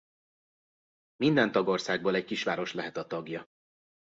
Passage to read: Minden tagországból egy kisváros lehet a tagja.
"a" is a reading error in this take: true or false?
false